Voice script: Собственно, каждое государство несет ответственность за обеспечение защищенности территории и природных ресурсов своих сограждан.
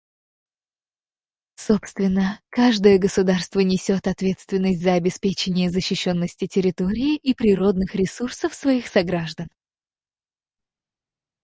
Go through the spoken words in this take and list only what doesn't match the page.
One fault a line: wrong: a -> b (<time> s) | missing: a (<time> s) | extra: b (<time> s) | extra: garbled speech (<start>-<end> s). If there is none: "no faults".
no faults